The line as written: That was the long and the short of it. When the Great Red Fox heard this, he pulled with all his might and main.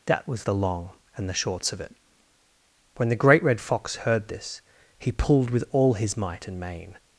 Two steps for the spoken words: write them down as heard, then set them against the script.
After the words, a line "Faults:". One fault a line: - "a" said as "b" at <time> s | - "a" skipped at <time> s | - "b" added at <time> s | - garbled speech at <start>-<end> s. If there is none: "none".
That was the long and the shorts of it. When the Great Red Fox heard this, he pulled with all his might and main.
Faults:
- "short" said as "shorts" at 1.3 s